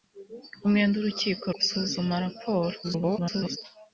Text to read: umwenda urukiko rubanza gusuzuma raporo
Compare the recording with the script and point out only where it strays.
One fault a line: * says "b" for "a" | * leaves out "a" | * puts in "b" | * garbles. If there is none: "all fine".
* leaves out "rubanza"
* garbles